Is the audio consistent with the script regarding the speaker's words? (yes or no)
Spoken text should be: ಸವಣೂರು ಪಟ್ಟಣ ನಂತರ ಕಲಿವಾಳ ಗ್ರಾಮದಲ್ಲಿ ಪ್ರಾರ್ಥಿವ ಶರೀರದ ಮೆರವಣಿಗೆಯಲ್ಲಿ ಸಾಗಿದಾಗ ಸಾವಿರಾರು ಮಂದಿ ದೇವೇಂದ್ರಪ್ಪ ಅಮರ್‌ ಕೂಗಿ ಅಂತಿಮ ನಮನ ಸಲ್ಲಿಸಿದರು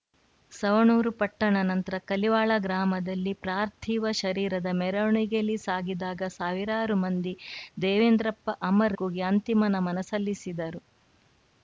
yes